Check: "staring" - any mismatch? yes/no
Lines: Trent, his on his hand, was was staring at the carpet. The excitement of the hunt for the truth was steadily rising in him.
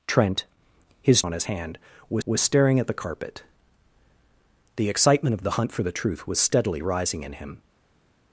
no